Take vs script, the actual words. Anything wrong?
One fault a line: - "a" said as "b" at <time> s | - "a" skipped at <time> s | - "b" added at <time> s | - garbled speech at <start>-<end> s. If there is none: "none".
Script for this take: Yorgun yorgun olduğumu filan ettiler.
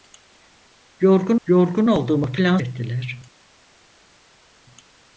none